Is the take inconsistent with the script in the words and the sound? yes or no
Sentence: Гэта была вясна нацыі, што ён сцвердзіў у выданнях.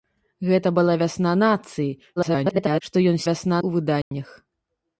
yes